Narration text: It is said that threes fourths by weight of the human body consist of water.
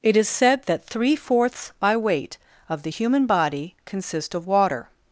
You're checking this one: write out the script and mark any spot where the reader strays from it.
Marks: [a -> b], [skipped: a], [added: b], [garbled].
It is said that [threes -> three] fourths by weight of the human body consist of water.